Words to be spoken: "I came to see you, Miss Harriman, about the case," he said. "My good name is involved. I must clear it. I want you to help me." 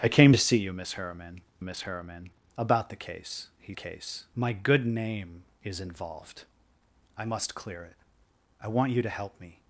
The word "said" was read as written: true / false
false